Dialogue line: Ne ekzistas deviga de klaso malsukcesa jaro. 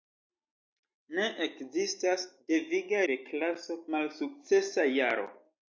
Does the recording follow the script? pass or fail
pass